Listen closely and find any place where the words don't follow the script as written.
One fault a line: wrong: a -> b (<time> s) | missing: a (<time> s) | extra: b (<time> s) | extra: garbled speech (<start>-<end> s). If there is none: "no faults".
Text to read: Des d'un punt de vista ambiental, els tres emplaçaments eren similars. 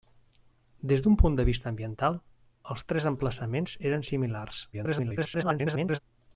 extra: garbled speech (4.7-6.0 s)